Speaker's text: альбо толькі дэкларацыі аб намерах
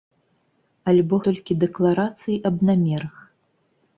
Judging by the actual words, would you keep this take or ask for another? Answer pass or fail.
pass